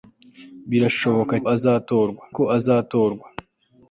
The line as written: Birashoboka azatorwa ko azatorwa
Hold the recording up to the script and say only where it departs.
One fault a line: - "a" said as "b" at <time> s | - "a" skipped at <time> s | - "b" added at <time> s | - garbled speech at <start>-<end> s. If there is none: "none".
none